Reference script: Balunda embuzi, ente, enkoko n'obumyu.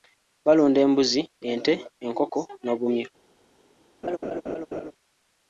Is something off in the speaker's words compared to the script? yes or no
no